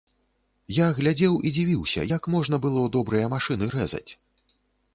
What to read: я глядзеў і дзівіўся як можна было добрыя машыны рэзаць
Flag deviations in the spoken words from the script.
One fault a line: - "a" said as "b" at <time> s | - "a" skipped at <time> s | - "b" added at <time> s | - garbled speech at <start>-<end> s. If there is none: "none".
none